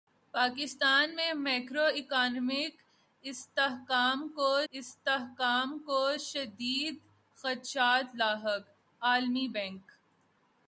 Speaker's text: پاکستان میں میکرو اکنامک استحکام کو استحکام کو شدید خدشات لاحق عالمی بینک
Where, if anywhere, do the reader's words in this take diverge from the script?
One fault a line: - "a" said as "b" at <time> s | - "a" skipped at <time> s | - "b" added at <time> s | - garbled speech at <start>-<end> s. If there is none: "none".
none